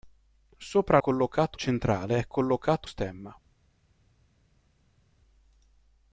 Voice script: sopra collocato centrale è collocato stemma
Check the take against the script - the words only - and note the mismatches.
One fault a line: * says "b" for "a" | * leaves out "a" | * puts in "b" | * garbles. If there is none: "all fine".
all fine